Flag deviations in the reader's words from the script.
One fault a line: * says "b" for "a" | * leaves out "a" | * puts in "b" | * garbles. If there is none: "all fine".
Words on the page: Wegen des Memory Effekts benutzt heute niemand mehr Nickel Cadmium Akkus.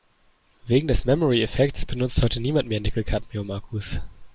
all fine